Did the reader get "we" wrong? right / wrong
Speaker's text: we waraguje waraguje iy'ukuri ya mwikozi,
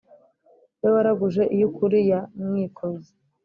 right